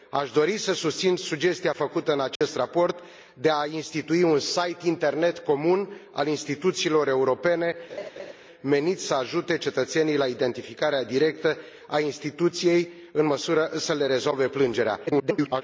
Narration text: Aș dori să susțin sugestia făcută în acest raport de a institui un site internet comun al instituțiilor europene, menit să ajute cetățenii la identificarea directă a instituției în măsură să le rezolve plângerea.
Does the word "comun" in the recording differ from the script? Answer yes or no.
no